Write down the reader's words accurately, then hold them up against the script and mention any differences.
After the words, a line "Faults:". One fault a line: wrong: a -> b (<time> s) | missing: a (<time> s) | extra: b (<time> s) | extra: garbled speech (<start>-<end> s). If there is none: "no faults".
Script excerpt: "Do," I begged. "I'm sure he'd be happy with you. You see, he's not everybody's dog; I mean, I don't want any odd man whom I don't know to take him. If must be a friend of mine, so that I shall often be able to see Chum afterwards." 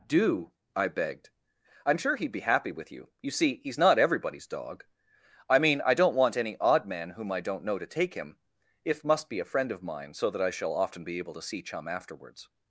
"Do," I begged. "I'm sure he'd be happy with you. You see, he's not everybody's dog; I mean, I don't want any odd man whom I don't know to take him. If must be a friend of mine, so that I shall often be able to see Chum afterwards."
Faults:
no faults